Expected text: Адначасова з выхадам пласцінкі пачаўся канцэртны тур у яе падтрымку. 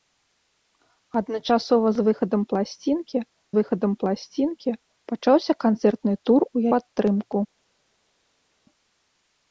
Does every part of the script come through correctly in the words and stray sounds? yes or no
no